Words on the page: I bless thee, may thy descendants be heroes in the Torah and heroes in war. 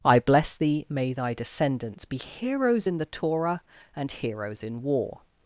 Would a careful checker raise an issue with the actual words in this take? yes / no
no